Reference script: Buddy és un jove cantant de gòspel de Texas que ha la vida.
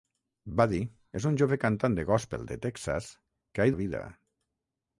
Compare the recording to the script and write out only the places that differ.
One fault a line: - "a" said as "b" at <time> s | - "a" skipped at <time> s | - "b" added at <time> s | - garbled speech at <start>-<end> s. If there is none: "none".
none